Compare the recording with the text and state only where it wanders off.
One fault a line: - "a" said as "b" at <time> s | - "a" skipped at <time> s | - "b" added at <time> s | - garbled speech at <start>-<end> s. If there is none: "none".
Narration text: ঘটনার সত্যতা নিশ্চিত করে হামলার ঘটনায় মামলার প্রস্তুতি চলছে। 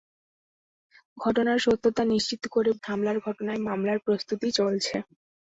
none